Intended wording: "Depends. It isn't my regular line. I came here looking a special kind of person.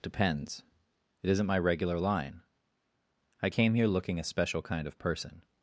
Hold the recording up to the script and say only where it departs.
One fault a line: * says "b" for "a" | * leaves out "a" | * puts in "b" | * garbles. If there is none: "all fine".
all fine